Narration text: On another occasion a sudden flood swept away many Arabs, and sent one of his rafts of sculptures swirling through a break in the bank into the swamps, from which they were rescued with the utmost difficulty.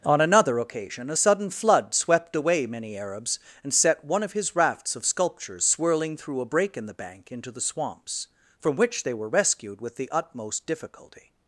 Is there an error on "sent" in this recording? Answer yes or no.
yes